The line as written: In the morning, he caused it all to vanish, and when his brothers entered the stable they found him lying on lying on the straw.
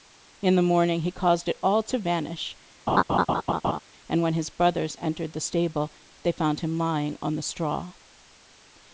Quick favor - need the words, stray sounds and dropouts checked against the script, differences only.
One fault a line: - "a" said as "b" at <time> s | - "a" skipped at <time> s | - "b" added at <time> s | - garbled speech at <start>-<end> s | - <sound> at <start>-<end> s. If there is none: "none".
- laugh at 2.9-3.8 s
- "lying on" skipped at 7.4 s